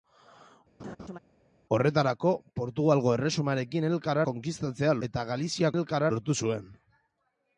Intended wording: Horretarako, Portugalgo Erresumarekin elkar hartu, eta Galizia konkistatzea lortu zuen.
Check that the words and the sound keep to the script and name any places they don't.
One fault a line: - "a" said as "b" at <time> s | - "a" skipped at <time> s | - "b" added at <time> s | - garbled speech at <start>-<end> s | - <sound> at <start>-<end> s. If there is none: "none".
- laugh at 0.8-1.2 s
- "hartu" said as "konkistatzea" at 4.3 s
- "konkistatzea" said as "elkar" at 5.7 s